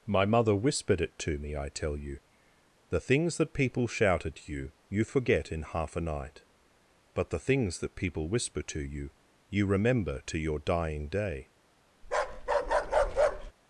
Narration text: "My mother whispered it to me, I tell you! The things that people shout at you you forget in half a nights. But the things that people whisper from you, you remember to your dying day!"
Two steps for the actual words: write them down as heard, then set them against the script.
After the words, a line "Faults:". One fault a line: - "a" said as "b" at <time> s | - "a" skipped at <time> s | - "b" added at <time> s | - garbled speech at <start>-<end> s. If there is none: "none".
"My mother whispered it to me, I tell you! The things that people shout at you you forget in half a night. But the things that people whisper to you, you remember to your dying day!"
Faults:
- "nights" said as "night" at 6.0 s
- "from" said as "to" at 8.6 s